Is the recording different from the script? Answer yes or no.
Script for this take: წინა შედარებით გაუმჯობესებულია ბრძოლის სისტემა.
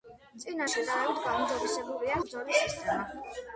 no